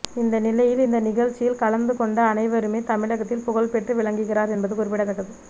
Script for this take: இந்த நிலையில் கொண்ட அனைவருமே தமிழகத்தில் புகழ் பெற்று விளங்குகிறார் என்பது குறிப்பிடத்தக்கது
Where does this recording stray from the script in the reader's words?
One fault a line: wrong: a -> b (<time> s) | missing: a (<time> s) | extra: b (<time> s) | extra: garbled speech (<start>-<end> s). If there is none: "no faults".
extra: இந்த நிகழ்ச்சியில் கலந்து (0.8 s)